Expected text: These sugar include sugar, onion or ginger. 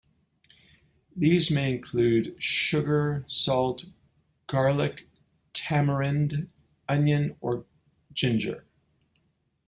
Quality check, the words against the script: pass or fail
fail